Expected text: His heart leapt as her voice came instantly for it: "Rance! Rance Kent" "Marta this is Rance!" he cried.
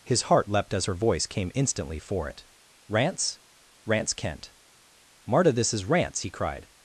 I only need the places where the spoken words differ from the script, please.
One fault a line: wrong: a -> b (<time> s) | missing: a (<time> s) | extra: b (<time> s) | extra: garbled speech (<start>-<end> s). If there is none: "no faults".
no faults